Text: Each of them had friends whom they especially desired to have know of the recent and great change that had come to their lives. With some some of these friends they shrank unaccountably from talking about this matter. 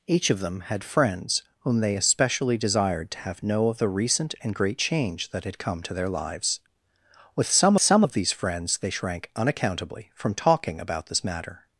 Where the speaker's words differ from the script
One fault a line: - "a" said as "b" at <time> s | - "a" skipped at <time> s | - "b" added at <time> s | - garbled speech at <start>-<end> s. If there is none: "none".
none